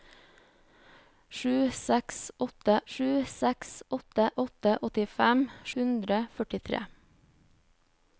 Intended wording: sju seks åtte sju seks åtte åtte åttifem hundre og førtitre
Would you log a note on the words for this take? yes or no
no